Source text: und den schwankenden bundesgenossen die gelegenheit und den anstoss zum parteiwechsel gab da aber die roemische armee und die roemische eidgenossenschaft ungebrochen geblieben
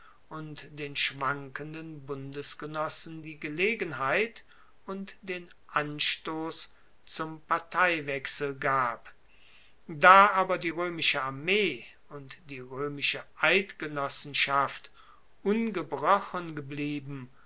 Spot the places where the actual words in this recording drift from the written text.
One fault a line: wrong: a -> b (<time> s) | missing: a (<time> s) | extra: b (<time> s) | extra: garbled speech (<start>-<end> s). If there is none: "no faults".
no faults